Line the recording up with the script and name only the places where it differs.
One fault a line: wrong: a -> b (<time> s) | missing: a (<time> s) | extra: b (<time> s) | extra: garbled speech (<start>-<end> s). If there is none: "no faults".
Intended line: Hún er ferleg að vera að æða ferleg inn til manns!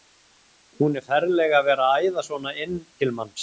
wrong: ferleg -> svona (2.3 s)